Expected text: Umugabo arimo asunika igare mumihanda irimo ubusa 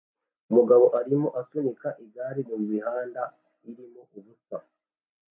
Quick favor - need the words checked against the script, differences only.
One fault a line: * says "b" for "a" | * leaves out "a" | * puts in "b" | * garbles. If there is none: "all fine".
all fine